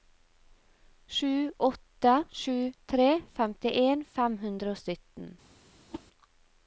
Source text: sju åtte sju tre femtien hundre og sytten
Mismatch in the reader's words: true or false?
true